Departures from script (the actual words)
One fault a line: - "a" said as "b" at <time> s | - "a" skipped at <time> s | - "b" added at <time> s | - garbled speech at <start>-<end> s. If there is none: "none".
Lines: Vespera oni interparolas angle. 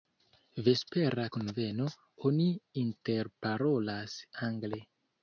- "kunveno" added at 1.4 s